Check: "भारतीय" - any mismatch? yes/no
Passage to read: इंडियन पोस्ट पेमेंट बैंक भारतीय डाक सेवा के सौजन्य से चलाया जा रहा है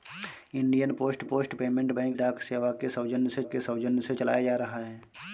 yes